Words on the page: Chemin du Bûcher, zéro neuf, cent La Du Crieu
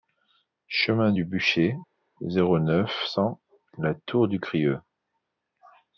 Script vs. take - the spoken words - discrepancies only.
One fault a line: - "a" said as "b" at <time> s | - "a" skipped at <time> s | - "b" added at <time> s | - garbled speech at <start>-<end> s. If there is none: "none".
- "Tour" added at 3.9 s